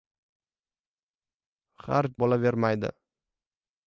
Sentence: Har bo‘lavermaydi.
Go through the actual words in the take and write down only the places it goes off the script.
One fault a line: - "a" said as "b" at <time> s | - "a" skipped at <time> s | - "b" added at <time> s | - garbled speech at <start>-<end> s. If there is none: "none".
none